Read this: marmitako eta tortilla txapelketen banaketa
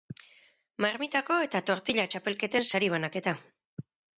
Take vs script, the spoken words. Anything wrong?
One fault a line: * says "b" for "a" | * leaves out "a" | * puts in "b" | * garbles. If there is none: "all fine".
* puts in "sari"